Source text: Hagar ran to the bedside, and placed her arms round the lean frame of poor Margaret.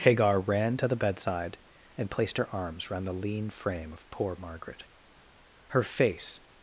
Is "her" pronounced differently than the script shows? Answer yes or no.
no